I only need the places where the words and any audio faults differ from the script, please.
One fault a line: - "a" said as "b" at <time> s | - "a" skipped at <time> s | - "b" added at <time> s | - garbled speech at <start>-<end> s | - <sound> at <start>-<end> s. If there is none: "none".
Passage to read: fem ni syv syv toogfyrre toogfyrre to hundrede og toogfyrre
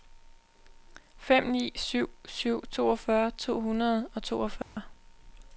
- "toogfyrre" skipped at 3.3 s
- dropout at 4.6-4.8 s